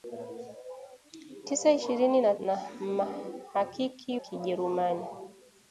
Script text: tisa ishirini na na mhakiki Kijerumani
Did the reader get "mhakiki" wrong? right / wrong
right